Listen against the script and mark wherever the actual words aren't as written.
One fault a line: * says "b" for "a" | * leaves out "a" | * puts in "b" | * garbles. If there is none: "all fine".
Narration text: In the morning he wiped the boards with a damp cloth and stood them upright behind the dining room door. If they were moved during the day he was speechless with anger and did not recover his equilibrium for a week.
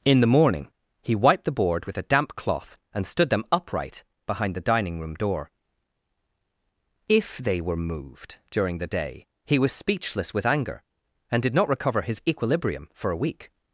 * says "board" for "boards"